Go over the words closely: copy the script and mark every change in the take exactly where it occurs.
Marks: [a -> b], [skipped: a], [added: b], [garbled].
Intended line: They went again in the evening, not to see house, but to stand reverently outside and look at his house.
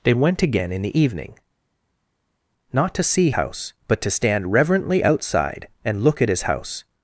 They went again in the evening, not to see house, but to stand reverently outside and look at his house.